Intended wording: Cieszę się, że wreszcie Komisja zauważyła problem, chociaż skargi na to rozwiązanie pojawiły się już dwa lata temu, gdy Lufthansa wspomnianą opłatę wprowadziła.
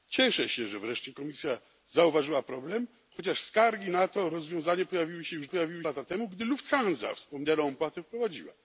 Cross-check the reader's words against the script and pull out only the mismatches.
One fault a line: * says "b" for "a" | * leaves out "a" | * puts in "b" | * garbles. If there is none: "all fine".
* says "pojawiły" for "dwa"